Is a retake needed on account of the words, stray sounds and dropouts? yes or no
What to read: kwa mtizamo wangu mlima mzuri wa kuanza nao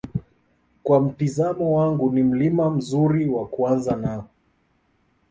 yes